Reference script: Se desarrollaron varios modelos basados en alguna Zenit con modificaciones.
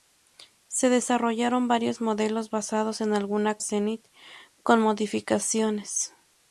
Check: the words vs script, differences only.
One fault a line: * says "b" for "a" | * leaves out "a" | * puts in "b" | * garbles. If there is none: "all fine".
all fine